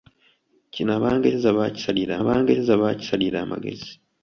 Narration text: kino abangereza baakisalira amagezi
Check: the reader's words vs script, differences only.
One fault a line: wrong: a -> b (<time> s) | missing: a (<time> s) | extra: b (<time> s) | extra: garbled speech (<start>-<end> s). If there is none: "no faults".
extra: abangereza baakisalira (2.2 s)